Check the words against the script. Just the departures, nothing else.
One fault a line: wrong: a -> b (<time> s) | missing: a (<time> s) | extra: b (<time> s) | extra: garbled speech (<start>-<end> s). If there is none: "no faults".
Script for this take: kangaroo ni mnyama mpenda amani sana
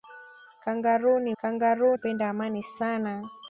wrong: mnyama -> kangaroo (1.4 s)